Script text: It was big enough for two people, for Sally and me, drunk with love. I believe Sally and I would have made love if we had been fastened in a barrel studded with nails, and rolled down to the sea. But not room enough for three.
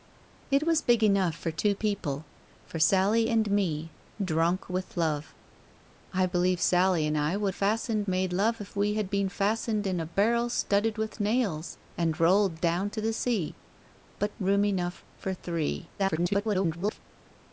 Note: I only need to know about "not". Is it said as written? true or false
false